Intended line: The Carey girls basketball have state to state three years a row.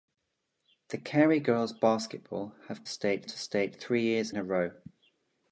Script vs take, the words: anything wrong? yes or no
no